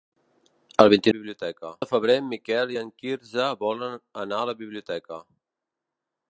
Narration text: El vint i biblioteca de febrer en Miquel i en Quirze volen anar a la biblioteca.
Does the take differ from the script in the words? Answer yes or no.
no